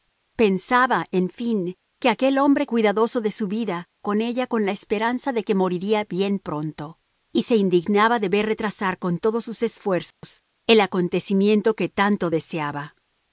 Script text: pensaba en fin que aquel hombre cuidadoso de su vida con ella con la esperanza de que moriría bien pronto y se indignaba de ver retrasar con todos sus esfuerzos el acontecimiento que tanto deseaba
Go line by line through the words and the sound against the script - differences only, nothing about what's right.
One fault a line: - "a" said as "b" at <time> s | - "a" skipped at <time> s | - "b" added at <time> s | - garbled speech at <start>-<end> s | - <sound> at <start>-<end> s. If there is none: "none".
- dropout at 10.1-10.2 s